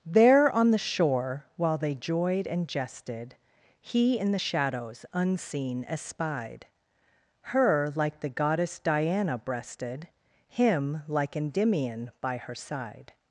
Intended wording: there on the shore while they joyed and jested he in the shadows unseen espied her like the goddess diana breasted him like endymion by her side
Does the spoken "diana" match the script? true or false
true